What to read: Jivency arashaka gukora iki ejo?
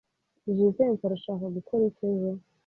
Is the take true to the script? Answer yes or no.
yes